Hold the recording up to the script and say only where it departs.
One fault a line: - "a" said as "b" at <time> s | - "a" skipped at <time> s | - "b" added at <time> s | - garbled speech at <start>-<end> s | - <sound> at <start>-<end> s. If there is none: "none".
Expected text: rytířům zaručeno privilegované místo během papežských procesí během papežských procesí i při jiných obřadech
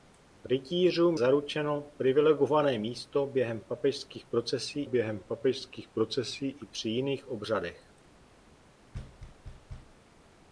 - thud at 8.9-10.0 s